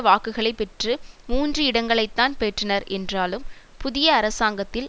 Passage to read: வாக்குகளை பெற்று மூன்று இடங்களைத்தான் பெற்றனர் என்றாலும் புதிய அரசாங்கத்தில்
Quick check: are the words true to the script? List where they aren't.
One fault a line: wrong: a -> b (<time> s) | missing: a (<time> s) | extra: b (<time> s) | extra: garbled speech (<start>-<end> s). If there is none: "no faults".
no faults